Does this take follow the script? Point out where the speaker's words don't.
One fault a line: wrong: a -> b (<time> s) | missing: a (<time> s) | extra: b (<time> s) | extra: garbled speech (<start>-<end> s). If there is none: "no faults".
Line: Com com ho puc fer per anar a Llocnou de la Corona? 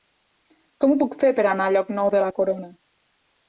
missing: com (0.9 s)